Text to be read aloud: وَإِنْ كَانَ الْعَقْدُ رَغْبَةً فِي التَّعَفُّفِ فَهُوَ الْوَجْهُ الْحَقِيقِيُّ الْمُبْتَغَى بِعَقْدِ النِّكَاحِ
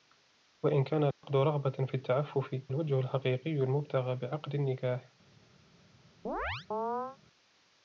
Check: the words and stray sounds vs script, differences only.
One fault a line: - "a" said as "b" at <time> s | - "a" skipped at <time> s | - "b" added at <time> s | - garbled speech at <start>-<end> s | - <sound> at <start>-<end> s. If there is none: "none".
- dropout at 1.1-1.2 s
- "فَهُوَ" skipped at 2.5 s
- chirp at 6.2-7.2 s